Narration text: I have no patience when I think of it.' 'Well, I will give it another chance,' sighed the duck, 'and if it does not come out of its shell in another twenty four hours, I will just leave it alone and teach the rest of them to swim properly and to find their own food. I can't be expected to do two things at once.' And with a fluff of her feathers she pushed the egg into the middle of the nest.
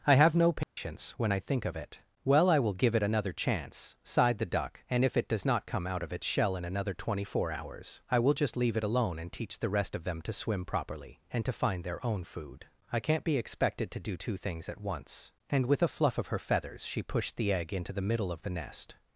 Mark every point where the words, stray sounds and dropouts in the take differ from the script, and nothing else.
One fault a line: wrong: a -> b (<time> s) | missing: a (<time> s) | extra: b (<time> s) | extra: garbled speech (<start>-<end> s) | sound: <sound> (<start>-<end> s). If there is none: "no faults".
sound: dropout (0.6-0.8 s)